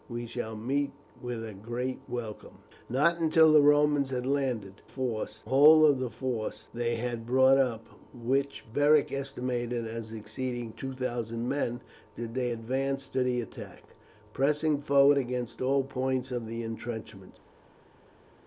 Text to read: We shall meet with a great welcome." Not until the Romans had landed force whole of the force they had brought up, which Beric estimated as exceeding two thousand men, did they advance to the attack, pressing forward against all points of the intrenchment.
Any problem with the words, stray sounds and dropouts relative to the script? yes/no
no